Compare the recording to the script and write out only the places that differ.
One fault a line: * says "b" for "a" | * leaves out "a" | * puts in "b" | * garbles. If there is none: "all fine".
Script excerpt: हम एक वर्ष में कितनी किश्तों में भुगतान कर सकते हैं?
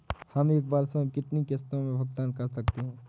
all fine